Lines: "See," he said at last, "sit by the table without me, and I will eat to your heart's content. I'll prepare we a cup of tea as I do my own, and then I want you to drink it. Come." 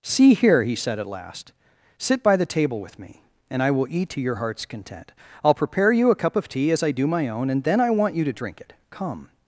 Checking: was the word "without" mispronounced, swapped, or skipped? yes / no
yes